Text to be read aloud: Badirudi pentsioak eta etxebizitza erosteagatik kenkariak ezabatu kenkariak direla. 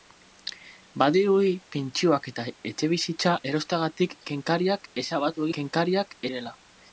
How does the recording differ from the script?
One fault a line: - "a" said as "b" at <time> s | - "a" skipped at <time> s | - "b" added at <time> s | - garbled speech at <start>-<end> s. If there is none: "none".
none